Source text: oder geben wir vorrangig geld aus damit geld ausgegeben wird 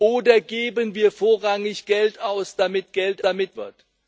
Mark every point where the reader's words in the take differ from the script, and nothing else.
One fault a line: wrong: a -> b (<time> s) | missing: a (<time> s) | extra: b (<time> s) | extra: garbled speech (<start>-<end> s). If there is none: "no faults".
wrong: ausgegeben -> damit (3.2 s)